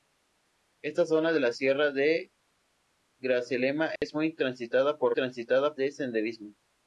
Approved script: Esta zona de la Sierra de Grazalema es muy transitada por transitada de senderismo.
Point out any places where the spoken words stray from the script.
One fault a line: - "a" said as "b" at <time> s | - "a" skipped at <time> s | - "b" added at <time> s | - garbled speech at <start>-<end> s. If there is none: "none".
none